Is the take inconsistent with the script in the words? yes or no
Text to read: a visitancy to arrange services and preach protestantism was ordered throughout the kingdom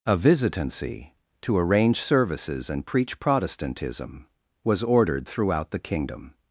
no